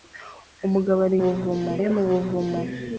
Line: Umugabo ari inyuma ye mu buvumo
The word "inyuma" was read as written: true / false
false